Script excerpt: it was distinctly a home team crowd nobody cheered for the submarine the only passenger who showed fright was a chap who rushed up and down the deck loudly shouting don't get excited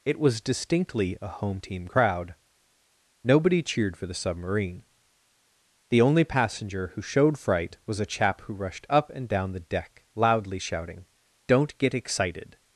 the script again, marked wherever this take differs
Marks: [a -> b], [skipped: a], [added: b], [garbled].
it was distinctly a home team crowd nobody cheered for the submarine the only passenger who showed fright was a chap who rushed up and down the deck loudly shouting don't get excited